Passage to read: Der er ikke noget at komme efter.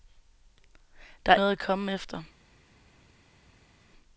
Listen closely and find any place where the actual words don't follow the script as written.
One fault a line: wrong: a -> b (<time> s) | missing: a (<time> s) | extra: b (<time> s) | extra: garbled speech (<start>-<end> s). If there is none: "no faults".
missing: ikke (1.4 s)